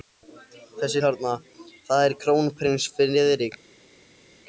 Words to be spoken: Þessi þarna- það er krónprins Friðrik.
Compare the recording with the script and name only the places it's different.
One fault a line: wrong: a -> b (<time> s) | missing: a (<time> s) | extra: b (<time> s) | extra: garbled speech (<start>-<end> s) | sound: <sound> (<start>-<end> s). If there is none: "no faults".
no faults